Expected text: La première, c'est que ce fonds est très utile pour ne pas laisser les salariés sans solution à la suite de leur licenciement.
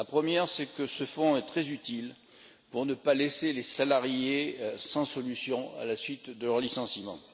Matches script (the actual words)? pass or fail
pass